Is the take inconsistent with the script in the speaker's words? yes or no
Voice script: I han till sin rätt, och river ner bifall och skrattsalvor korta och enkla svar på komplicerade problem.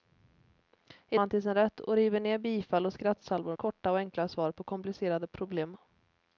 no